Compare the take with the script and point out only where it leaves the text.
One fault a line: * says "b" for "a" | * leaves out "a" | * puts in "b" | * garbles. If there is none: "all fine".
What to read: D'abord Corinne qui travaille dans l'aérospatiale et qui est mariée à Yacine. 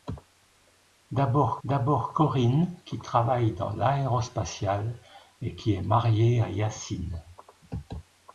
* puts in "d'abord"